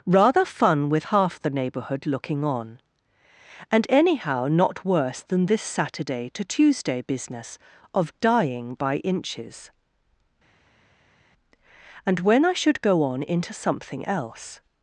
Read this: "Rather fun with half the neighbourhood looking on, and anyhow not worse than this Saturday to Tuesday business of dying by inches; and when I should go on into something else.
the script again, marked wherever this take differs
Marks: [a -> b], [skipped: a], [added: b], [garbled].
"Rather fun with half the neighbourhood looking on, and anyhow not worse than this Saturday to Tuesday business of dying by inches; and when I should go on into something else.